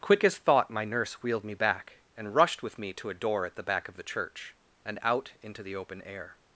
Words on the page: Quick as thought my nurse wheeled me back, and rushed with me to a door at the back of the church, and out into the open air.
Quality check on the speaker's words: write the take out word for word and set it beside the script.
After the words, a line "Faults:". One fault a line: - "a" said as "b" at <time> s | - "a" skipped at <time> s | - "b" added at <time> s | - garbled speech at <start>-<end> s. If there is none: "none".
Quick as thought my nurse wheeled me back, and rushed with me to a door at the back of the church, and out into the open air.
Faults:
none